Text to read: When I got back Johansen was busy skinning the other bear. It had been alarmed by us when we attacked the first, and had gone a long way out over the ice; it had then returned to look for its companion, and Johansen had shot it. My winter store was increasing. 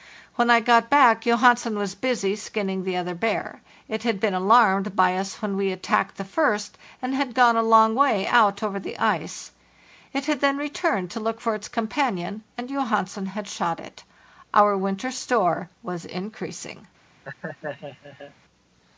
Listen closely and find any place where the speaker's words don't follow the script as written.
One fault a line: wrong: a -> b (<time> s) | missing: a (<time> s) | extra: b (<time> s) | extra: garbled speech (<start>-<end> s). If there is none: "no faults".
wrong: My -> Our (14.6 s)